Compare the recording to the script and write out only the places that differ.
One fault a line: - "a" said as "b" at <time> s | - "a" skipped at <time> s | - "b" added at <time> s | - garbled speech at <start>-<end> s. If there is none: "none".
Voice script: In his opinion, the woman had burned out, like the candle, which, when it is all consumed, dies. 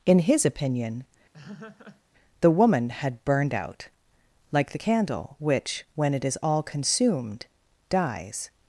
none